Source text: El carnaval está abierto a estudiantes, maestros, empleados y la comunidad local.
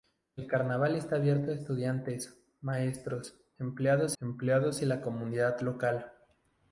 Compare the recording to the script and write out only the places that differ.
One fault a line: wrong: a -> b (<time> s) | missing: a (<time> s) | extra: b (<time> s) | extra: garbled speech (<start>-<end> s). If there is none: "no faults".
extra: empleados (4.2 s)